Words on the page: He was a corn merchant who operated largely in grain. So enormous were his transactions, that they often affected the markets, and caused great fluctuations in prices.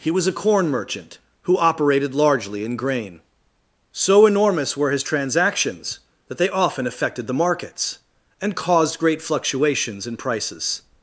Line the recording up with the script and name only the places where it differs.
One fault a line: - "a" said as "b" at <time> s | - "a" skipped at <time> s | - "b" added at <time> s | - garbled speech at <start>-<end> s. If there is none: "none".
none